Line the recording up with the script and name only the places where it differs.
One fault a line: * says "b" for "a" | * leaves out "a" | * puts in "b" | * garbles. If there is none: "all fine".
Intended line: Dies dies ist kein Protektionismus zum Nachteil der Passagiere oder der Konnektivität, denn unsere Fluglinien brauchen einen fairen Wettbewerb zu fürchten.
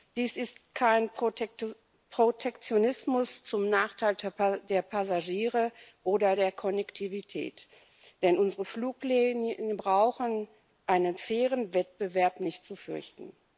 * leaves out "dies"
* puts in "nicht"